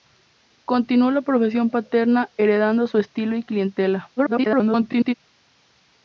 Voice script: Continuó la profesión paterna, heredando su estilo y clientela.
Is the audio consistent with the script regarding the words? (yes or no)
no